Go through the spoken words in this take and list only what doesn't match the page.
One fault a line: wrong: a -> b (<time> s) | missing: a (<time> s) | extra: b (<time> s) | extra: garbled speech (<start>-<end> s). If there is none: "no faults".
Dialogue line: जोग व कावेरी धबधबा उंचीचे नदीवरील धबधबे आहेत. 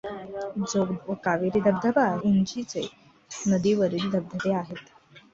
no faults